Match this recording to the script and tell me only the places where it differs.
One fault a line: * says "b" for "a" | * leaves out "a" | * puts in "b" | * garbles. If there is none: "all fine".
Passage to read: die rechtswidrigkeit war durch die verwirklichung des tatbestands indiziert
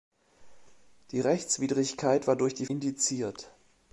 * leaves out "verwirklichung des tatbestands"